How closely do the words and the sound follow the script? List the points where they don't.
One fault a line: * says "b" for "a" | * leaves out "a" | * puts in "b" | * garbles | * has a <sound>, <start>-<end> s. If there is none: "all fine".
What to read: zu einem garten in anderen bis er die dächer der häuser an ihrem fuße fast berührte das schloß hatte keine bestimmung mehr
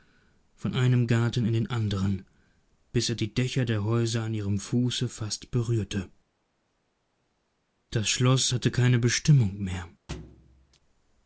* says "von" for "zu"
* puts in "den"
* has a thud, 10.1-10.8 s